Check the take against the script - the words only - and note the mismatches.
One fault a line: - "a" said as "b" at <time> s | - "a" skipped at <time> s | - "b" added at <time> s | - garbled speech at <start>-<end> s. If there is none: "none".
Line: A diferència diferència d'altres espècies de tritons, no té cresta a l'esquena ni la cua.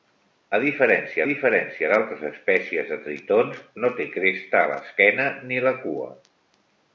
none